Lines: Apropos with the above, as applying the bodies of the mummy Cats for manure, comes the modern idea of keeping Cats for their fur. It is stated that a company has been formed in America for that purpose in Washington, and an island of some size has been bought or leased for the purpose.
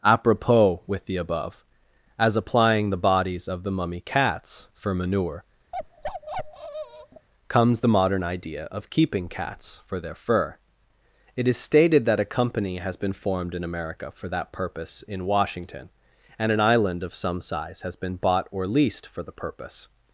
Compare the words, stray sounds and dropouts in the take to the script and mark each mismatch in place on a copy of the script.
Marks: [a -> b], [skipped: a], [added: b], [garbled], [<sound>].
Apropos with the above, as applying the bodies of the mummy Cats for manure, [bark] comes the modern idea of keeping Cats for their fur. It is stated that a company has been formed in America for that purpose in Washington, and an island of some size has been bought or leased for the purpose.